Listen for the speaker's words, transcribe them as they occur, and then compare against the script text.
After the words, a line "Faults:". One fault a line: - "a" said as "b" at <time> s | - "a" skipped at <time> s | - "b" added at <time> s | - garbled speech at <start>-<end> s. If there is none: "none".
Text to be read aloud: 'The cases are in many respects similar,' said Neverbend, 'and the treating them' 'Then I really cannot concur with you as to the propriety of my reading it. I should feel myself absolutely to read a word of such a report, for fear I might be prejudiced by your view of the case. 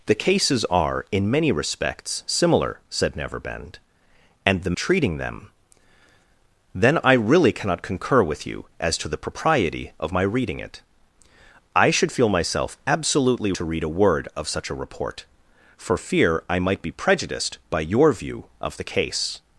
'The cases are in many respects similar,' said Neverbend, 'and the treating them' 'Then I really cannot concur with you as to the propriety of my reading it. I should feel myself absolutely to read a word of such a report, for fear I might be prejudiced by your view of the case.
Faults:
none